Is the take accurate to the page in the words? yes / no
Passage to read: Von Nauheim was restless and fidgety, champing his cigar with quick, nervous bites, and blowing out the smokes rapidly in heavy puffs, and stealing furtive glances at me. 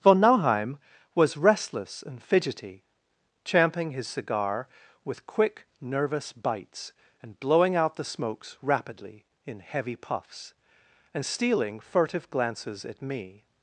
yes